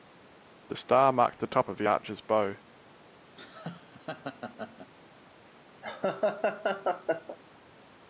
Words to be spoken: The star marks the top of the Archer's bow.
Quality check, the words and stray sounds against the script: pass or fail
fail